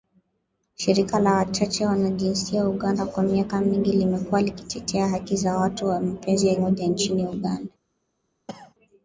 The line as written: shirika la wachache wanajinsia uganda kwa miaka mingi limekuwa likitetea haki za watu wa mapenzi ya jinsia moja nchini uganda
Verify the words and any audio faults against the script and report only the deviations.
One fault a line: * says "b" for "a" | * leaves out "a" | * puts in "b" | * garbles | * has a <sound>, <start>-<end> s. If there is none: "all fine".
* leaves out "jinsia"
* has a cough, 8.5-8.7 s